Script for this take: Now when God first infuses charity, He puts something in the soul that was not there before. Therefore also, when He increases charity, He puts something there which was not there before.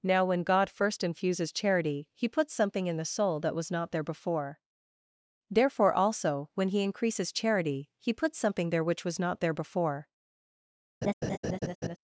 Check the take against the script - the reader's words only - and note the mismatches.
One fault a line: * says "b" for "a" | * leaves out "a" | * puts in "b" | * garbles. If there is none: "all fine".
all fine